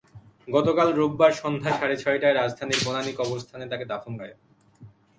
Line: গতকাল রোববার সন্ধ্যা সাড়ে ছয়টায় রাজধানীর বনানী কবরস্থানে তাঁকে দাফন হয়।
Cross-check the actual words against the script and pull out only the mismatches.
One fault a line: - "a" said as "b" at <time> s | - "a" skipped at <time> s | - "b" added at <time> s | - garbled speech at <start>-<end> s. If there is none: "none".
none